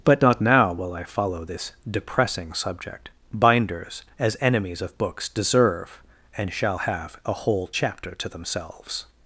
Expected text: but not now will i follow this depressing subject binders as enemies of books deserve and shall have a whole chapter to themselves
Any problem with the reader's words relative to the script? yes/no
no